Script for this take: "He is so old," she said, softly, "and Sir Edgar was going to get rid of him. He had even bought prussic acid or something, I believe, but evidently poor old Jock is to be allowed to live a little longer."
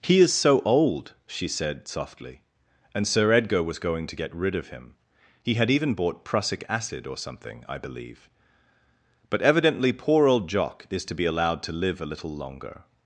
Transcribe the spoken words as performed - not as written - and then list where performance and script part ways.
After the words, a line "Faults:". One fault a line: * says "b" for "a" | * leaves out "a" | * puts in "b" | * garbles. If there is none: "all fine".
"He is so old," she said, softly, "and Sir Edgar was going to get rid of him. He had even bought prussic acid or something, I believe, but evidently poor old Jock is to be allowed to live a little longer."
Faults:
all fine